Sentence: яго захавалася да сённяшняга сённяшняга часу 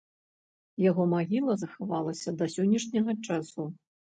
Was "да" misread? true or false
false